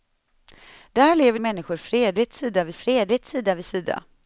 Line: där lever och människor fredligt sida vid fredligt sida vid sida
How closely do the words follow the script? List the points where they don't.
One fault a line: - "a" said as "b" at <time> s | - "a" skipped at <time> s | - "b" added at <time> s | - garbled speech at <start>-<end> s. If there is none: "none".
none